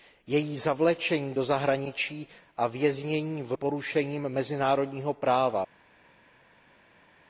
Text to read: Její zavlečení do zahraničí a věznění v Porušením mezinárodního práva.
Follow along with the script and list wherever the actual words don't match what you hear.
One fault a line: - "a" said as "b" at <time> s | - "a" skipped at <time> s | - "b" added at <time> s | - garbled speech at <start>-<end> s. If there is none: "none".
none